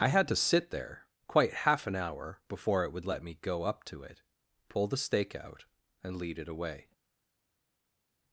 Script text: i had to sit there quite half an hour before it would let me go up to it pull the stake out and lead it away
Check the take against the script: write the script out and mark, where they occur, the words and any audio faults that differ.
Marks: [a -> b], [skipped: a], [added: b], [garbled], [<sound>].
i had to sit there quite half an hour before it would let me go up to it pull the stake out and lead it away